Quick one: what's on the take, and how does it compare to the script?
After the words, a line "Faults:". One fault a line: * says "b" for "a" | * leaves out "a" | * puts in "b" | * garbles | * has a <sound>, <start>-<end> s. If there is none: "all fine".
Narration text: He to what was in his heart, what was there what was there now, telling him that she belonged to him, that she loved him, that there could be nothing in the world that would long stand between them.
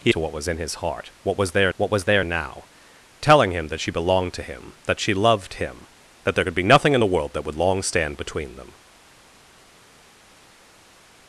He to what was in his heart, what was there what was there now, telling him that she belonged to him, that she loved him, that there could be nothing in the world that would long stand between them.
Faults:
all fine